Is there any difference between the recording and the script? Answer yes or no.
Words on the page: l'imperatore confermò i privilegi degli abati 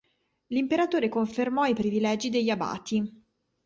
no